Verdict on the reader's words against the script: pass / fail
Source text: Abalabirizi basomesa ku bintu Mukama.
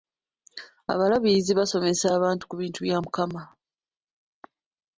fail